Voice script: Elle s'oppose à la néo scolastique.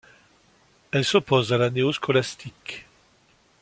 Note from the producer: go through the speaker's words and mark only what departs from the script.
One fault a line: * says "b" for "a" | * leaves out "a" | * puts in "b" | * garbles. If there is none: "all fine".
all fine